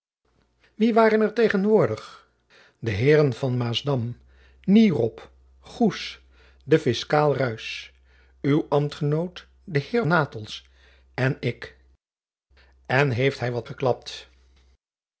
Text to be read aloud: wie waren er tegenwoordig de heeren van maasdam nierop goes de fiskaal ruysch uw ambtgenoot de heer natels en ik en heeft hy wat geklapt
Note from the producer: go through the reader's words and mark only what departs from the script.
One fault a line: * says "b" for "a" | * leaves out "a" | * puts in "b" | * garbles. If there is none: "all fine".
all fine